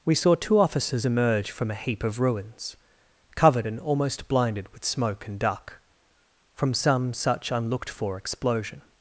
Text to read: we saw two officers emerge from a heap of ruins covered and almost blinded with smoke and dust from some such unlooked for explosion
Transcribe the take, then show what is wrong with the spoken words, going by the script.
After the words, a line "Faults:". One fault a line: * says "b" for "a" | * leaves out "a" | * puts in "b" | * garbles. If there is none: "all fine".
we saw two officers emerge from a heap of ruins covered and almost blinded with smoke and duck from some such unlooked for explosion
Faults:
* says "duck" for "dust"